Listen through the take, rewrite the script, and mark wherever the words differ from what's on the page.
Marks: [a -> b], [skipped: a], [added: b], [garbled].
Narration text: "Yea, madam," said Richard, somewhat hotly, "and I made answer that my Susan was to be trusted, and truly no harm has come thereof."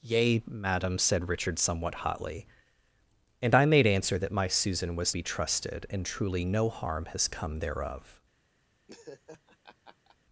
"Yea, madam," said Richard, somewhat hotly, "and I made answer that my Susan was [skipped: to] be trusted, and truly no harm has come thereof."